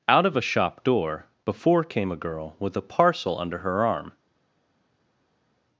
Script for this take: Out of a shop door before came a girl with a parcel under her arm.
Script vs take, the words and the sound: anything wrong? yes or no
no